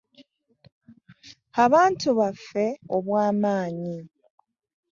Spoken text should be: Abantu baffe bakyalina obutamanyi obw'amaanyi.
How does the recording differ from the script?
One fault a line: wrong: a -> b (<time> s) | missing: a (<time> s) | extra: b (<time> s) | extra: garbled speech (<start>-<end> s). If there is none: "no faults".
missing: bakyalina obutamanyi (2.6 s)